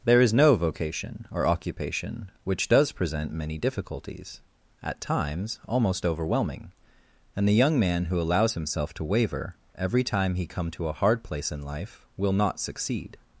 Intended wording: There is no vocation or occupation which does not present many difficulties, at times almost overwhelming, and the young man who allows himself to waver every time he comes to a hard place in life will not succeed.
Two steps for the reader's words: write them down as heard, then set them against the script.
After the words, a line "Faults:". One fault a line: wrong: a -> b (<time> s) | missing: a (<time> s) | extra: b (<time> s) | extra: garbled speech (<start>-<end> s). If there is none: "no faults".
There is no vocation or occupation which does present many difficulties, at times almost overwhelming, and the young man who allows himself to waver every time he come to a hard place in life will not succeed.
Faults:
missing: not (2.9 s)
wrong: comes -> come (10.5 s)